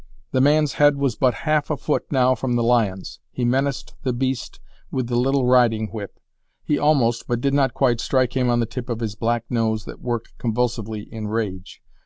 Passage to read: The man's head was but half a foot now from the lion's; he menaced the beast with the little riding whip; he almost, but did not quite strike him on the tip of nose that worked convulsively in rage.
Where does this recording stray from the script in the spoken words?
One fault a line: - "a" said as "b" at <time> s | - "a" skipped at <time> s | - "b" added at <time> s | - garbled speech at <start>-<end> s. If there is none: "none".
- "his black" added at 9.0 s